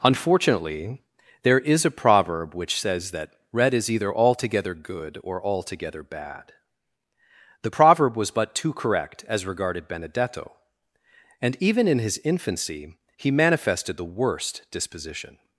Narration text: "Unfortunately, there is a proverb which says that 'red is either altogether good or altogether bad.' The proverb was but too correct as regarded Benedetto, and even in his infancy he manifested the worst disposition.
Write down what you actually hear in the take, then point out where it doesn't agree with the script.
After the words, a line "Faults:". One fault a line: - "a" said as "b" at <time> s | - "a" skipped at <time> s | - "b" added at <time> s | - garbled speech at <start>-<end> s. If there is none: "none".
"Unfortunately, there is a proverb which says that 'red is either altogether good or altogether bad.' The proverb was but too correct as regarded Benedetto, and even in his infancy he manifested the worst disposition.
Faults:
none